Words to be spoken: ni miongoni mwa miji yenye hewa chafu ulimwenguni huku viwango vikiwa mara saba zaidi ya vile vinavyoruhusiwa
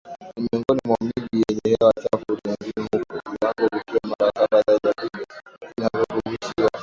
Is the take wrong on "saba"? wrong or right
right